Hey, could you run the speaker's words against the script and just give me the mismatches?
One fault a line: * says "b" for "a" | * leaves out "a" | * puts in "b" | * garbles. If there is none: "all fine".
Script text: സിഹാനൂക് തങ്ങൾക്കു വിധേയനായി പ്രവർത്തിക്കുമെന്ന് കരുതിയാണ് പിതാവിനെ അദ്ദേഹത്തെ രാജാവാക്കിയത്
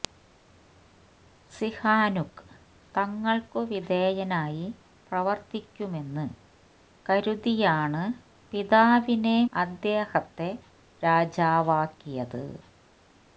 all fine